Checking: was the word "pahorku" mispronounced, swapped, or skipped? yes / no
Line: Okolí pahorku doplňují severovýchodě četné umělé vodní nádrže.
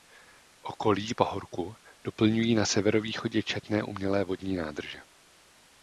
no